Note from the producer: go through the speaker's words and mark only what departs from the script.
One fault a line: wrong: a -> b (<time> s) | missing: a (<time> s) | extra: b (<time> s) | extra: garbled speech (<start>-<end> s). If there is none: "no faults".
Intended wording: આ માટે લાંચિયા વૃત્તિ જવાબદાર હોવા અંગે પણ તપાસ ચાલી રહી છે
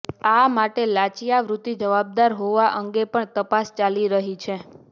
no faults